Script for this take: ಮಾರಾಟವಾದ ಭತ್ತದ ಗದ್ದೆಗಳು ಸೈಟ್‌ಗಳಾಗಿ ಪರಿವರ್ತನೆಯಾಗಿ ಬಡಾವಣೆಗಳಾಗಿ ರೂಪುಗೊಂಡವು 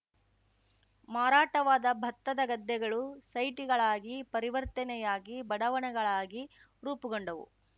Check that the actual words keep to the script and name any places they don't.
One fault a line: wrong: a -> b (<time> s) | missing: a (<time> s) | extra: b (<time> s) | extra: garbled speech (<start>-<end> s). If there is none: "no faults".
no faults